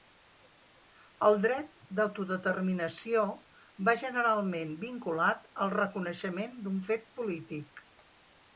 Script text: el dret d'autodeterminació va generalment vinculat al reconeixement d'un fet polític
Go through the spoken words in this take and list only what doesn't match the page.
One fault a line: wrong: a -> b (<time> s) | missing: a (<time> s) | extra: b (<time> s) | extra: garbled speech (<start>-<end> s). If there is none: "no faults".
no faults